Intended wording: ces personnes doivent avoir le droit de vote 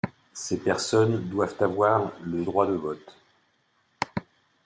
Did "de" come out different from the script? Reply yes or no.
no